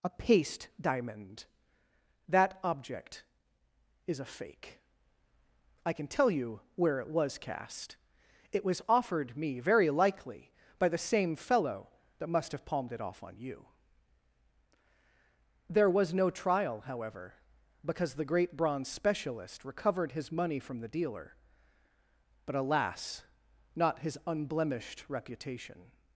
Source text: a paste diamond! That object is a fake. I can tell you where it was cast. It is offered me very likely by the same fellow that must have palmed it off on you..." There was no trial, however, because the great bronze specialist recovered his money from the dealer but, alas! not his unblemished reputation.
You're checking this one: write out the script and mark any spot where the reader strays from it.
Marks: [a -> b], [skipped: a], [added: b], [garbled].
a paste diamond! That object is a fake. I can tell you where it was cast. It [is -> was] offered me very likely by the same fellow that must have palmed it off on you..." There was no trial, however, because the great bronze specialist recovered his money from the dealer but, alas! not his unblemished reputation.